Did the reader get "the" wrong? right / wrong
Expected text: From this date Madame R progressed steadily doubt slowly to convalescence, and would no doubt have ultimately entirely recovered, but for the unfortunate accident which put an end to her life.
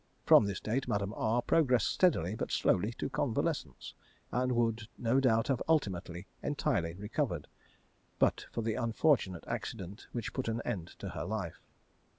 right